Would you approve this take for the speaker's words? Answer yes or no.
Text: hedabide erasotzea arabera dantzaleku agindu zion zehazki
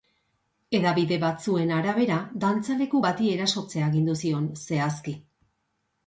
no